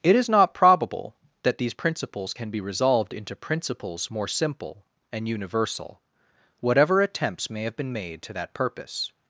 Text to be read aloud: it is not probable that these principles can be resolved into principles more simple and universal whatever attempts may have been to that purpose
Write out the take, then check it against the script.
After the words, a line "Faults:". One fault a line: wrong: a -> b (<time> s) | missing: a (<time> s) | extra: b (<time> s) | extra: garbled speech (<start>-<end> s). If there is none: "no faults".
it is not probable that these principles can be resolved into principles more simple and universal whatever attempts may have been made to that purpose
Faults:
extra: made (7.9 s)